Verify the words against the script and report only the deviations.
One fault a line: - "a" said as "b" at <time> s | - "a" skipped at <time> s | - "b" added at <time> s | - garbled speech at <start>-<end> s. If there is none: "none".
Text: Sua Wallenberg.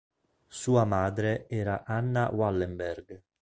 - "madre era Anna" added at 0.8 s